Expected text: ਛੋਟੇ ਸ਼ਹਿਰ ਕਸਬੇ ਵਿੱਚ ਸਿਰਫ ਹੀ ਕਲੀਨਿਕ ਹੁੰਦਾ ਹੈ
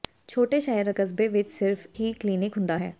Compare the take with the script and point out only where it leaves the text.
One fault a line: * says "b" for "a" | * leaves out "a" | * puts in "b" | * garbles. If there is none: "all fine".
all fine